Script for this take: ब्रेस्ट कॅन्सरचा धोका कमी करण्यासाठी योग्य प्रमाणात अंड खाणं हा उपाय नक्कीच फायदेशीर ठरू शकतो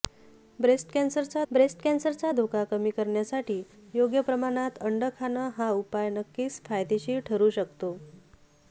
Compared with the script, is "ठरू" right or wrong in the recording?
right